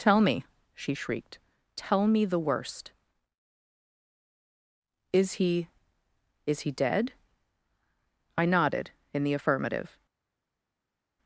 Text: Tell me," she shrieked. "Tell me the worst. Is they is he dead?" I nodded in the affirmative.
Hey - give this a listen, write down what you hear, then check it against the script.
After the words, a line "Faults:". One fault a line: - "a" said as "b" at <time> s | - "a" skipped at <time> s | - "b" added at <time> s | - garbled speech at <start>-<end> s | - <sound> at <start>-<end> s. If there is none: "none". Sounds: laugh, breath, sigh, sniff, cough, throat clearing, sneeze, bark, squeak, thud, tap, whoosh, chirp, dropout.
Tell me," she shrieked. "Tell me the worst. Is he is he dead?" I nodded in the affirmative.
Faults:
- "they" said as "he" at 5.3 s